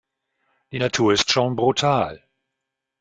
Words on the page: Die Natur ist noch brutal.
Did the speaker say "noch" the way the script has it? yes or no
no